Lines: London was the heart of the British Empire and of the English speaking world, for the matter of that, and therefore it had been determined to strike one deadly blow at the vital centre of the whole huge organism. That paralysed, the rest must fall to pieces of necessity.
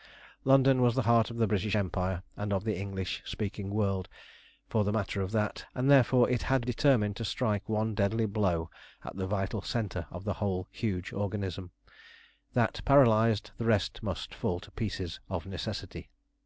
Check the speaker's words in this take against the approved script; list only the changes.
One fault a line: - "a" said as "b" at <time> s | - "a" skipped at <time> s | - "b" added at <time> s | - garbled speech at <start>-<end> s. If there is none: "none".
- "been" skipped at 6.7 s